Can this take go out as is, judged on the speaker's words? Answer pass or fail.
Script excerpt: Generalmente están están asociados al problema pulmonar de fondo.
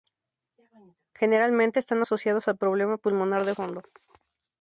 fail